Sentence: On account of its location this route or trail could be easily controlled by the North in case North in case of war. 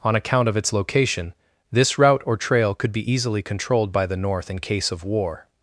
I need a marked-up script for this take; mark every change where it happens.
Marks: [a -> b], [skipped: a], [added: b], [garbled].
On account of its location this route or trail could be easily controlled by the North in case [skipped: North in case] of war.